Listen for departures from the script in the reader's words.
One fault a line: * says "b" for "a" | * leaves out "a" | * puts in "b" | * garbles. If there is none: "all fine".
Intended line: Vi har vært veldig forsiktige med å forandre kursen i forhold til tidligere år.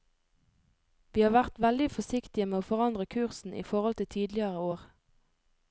all fine